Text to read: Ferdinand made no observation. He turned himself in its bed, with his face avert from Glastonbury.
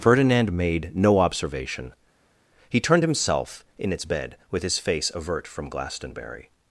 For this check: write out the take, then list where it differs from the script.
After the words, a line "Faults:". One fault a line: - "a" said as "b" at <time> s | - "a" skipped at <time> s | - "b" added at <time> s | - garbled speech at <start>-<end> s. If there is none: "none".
Ferdinand made no observation. He turned himself in its bed, with his face avert from Glastonbury.
Faults:
none